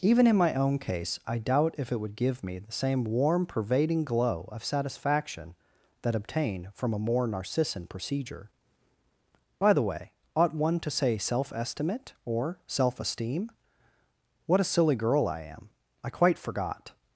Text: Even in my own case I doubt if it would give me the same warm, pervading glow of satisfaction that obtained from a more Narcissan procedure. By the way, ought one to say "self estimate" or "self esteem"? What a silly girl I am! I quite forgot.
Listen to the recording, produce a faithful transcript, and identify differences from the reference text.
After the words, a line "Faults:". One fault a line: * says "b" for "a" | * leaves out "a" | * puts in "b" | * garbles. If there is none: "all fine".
Even in my own case I doubt if it would give me the same warm, pervading glow of satisfaction that obtained from a more Narcissan procedure. By the way, ought one to say "self estimate" or "self esteem"? What a silly girl I am! I quite forgot.
Faults:
all fine